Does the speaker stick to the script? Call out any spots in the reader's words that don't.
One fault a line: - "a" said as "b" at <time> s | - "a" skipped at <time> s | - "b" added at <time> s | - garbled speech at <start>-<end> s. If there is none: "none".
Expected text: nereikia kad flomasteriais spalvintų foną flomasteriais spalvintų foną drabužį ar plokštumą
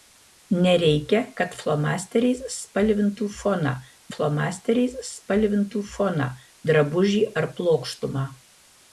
none